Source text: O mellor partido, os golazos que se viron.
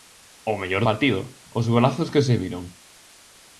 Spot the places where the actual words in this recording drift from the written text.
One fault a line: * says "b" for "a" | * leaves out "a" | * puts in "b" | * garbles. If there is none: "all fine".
all fine